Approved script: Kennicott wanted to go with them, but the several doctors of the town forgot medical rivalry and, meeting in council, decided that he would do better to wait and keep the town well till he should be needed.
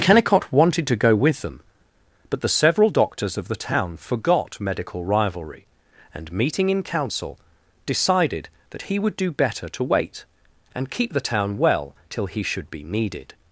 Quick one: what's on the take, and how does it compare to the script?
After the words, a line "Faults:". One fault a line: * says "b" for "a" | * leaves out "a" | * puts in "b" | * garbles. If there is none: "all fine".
Kennicott wanted to go with them, but the several doctors of the town forgot medical rivalry and, meeting in council, decided that he would do better to wait and keep the town well till he should be needed.
Faults:
all fine